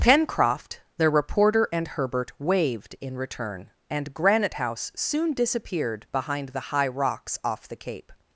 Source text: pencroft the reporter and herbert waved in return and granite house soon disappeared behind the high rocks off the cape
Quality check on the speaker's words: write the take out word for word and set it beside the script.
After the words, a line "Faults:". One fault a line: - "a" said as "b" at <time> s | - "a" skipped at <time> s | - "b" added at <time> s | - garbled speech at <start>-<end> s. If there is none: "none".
pencroft the reporter and herbert waved in return and granite house soon disappeared behind the high rocks off the cape
Faults:
none